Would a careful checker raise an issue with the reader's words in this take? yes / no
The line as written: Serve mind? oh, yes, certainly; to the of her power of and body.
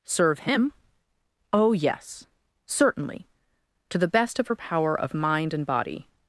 yes